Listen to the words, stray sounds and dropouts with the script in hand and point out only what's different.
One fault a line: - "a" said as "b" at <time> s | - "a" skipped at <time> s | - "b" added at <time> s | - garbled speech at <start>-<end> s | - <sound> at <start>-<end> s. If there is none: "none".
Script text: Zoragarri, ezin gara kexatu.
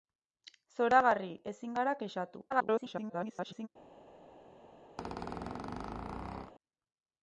- garbled speech at 2.5-3.7 s
- squeak at 5.0-6.5 s